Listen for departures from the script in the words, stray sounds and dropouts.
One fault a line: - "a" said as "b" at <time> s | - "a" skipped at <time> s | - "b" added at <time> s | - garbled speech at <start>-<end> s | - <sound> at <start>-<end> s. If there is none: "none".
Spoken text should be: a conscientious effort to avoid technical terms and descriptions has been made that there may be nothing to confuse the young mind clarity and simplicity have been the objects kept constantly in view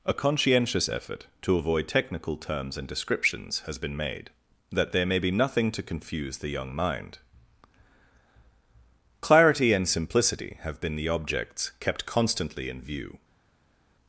none